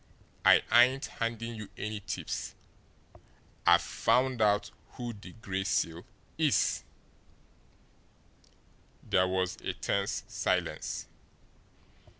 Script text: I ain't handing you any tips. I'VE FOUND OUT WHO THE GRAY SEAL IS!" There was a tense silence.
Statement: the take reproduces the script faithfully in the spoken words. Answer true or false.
true